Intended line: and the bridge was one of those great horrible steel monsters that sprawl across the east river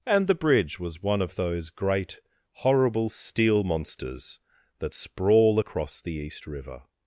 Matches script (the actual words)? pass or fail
pass